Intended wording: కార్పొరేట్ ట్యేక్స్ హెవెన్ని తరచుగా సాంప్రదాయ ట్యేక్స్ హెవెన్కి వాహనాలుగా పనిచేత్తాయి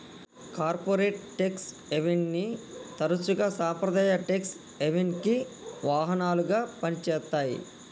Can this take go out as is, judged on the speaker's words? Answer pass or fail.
pass